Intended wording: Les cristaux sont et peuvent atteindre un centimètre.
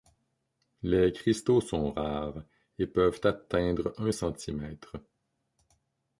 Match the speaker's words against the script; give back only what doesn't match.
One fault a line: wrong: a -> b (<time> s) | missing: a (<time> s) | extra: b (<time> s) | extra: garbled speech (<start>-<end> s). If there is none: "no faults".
extra: rares (1.9 s)